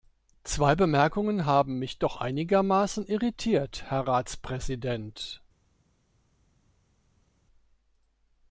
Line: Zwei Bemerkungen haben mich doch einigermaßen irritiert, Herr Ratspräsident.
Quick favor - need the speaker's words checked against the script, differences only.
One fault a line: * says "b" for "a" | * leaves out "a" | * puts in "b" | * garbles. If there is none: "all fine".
all fine